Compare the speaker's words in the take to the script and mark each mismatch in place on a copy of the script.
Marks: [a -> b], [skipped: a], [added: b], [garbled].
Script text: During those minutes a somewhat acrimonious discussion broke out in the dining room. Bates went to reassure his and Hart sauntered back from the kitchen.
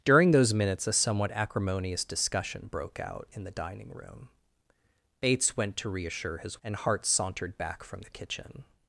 During those minutes a somewhat acrimonious discussion broke out in the dining room. Bates went to reassure his and Hart sauntered back from the kitchen.